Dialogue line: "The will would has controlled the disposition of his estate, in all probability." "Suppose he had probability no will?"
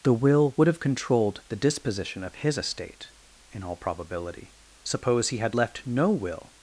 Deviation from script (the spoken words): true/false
true